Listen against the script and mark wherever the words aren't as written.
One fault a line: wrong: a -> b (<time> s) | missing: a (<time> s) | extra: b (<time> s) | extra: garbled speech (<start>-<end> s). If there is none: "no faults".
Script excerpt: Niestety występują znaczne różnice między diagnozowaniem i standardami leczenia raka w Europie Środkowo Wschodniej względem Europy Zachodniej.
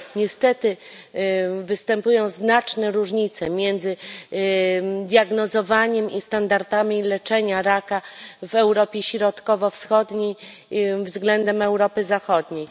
no faults